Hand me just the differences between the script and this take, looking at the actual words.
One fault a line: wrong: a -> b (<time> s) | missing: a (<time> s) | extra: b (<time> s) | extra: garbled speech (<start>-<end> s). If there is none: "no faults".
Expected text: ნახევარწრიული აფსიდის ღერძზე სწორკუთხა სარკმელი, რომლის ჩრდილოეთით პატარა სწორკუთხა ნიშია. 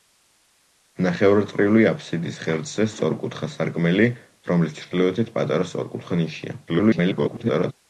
extra: garbled speech (6.7-7.7 s)